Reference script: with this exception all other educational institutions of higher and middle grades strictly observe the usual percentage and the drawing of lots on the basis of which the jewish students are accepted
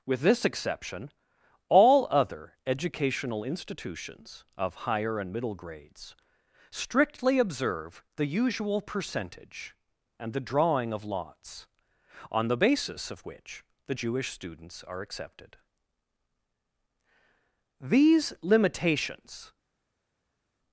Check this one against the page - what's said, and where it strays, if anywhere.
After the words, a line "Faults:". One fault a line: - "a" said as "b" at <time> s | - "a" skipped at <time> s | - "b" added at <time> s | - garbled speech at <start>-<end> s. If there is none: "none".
with this exception all other educational institutions of higher and middle grades strictly observe the usual percentage and the drawing of lots on the basis of which the jewish students are accepted these limitations
Faults:
- "these limitations" added at 17.8 s